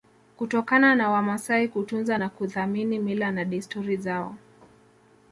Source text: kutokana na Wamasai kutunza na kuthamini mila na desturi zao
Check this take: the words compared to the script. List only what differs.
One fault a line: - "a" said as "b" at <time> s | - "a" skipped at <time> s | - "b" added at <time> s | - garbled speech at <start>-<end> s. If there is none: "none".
none